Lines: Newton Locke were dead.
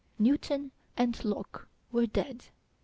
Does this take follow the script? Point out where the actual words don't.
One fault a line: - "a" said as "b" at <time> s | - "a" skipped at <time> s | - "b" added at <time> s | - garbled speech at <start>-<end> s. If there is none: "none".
- "and" added at 1.0 s